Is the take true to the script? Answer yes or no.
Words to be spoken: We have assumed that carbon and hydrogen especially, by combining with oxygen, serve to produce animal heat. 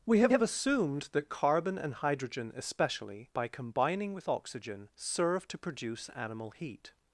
no